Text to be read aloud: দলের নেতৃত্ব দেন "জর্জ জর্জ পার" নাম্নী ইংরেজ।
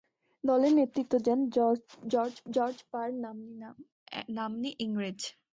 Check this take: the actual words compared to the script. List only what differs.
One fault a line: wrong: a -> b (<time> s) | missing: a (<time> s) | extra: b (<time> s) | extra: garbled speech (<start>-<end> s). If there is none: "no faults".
no faults